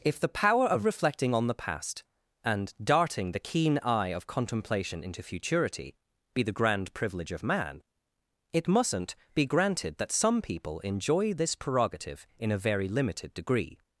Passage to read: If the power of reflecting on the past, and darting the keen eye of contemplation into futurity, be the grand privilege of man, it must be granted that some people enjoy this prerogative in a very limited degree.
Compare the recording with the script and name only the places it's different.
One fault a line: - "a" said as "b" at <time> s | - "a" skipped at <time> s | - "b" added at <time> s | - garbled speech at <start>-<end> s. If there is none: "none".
- "must" said as "mustn't" at 8.7 s